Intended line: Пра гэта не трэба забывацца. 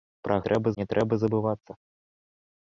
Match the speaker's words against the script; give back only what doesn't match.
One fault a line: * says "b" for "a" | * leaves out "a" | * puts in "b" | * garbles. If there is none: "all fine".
* says "трэба" for "гэта"